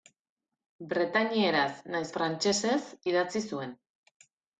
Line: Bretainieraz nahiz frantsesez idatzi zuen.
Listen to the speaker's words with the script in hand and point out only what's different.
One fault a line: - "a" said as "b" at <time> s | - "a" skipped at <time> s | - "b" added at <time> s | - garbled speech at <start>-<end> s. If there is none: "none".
none